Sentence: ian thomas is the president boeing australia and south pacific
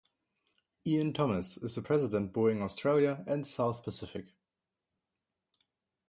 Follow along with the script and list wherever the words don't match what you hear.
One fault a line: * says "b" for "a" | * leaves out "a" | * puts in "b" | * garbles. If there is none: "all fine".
all fine